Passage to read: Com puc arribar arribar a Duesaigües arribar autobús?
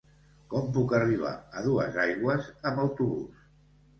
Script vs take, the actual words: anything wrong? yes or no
yes